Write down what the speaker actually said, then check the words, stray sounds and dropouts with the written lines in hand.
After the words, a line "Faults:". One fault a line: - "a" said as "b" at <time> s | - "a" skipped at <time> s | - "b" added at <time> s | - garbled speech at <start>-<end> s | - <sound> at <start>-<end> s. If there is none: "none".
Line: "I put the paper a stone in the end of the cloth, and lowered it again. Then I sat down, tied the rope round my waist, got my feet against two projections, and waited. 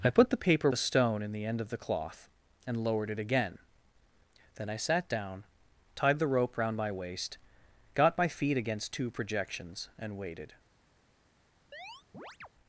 "I put the paper a stone in the end of the cloth, and lowered it again. Then I sat down, tied the rope round my waist, got my feet against two projections, and waited.
Faults:
- chirp at 11.7-12.5 s